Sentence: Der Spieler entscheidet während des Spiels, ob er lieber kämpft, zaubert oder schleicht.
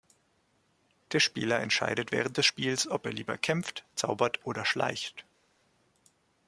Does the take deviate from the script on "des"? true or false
false